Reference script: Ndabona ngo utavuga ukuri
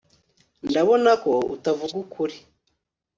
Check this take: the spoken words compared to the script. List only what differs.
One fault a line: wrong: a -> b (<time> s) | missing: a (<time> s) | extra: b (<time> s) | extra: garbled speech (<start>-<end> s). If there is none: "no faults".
wrong: ngo -> ko (1.2 s)